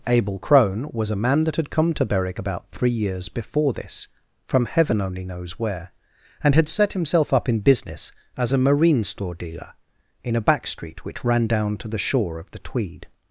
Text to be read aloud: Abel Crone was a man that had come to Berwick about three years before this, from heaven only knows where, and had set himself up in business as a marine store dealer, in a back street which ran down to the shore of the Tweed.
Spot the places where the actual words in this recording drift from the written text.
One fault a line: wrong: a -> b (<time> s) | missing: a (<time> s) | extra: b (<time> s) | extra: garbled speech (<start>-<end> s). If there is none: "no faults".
no faults